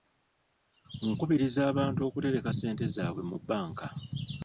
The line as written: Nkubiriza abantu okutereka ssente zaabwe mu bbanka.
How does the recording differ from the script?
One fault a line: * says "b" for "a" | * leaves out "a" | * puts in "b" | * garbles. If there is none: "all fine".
all fine